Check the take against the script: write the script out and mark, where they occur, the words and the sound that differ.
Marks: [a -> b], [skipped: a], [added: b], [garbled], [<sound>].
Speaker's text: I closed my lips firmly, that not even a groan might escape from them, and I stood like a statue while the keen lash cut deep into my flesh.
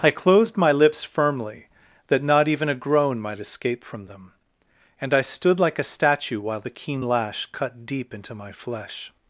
I closed my lips firmly, that not even a groan might escape from them, and I stood like a statue while the keen lash cut deep into my flesh.